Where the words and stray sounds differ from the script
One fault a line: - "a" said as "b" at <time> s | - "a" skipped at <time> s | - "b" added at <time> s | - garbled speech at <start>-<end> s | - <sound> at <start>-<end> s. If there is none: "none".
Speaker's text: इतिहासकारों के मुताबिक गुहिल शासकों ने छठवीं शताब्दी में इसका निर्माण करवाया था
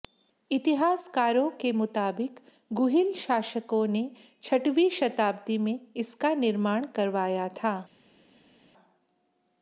none